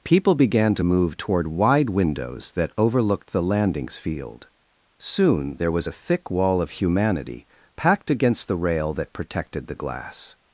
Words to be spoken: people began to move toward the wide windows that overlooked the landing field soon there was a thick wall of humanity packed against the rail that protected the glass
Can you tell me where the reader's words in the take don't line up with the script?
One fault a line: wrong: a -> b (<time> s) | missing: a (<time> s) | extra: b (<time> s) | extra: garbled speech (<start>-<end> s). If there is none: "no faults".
missing: the (1.5 s)
wrong: landing -> landings (3.4 s)